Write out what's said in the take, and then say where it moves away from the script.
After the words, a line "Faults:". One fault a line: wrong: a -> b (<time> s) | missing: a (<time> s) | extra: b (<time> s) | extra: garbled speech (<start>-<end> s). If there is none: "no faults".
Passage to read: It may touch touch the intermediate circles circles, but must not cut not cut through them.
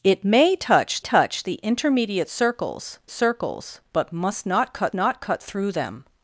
It may touch touch the intermediate circles circles, but must not cut not cut through them.
Faults:
no faults